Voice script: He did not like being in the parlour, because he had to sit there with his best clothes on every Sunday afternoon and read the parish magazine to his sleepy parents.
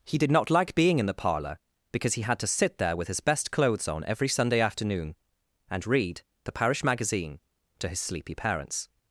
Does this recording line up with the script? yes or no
yes